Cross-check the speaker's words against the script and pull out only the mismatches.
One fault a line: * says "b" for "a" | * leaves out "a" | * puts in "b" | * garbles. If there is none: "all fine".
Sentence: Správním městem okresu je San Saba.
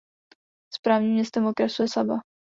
* leaves out "San"